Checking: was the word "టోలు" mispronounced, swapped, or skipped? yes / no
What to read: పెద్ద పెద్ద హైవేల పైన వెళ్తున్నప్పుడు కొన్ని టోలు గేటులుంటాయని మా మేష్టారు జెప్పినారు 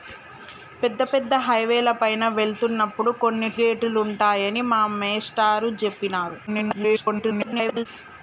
yes